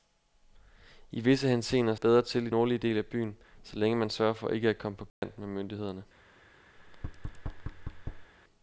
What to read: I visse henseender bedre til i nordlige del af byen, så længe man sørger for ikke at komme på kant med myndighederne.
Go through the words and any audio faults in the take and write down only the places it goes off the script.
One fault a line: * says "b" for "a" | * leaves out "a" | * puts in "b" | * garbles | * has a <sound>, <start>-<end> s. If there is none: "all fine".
* has a dropout, 5.1-5.2 s
* has a thud, 6.8-8.3 s